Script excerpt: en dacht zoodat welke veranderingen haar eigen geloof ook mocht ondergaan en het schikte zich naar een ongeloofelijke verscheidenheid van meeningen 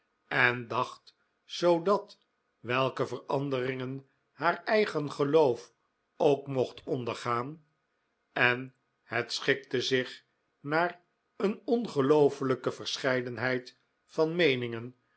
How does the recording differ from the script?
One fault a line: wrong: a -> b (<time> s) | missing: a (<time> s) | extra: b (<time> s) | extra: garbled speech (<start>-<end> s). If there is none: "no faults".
no faults